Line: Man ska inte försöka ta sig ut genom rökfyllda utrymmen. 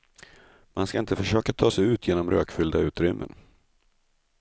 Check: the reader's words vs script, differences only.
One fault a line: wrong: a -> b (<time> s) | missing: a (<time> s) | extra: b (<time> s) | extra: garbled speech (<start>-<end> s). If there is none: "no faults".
no faults